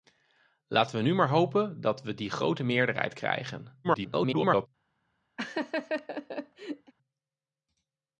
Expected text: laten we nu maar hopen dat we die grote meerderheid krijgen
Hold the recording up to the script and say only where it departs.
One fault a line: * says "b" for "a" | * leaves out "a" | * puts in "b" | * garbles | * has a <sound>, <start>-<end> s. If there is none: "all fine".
* garbles
* has a laugh, 5.4-6.9 s